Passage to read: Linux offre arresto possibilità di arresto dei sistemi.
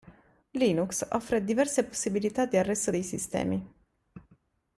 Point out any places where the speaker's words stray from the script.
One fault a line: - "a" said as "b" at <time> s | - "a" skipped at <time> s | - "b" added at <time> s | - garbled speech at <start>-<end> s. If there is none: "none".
- "arresto" said as "diverse" at 1.4 s